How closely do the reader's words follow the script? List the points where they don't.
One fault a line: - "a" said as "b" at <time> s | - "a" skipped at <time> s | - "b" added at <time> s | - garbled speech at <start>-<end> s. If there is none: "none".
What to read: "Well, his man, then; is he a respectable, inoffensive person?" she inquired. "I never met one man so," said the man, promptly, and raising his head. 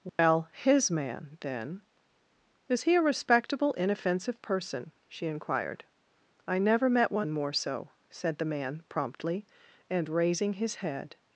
- "man" said as "more" at 7.3 s